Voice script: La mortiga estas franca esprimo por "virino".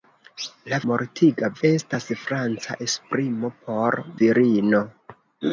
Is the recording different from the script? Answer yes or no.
no